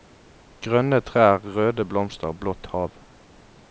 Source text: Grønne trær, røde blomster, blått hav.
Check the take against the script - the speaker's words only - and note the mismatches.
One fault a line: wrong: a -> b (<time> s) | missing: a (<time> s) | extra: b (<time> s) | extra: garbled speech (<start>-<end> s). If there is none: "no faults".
no faults